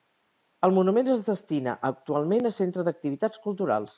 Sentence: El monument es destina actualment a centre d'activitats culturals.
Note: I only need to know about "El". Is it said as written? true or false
true